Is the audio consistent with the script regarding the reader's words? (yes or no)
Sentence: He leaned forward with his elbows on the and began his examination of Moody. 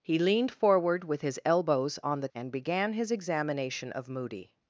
yes